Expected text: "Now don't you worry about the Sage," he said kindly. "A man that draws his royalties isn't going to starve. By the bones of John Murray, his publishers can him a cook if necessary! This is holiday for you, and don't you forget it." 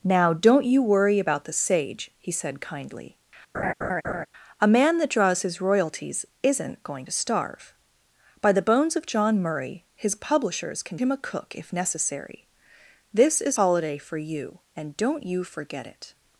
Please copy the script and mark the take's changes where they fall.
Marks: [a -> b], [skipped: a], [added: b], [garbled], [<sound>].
"Now don't you worry about the Sage," he said kindly. [laugh] "A man that draws his royalties isn't going to starve. By the bones of John Murray, his publishers can him a cook if necessary! This is holiday for you, and don't you forget it."